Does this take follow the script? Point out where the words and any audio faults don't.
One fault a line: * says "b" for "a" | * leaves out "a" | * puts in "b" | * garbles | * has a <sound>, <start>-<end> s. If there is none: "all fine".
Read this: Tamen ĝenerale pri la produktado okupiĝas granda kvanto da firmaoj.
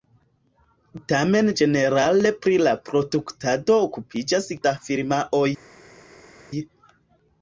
* leaves out "granda kvanto"